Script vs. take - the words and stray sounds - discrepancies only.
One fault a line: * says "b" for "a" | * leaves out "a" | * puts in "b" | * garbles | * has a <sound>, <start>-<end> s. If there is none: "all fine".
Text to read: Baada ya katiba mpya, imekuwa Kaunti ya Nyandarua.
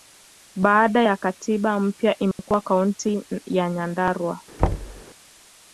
* has a dropout, 2.3-2.4 s
* has a thud, 4.6-5.0 s